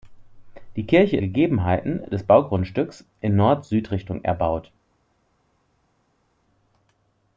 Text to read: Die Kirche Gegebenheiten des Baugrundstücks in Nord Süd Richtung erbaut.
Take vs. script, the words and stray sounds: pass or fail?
pass